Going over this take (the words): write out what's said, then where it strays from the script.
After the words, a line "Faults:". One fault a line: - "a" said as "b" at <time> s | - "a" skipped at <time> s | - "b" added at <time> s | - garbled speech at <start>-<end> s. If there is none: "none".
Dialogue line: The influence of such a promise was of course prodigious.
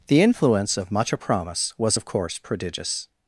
The influence of much a promise was of course prodigious.
Faults:
- "such" said as "much" at 0.9 s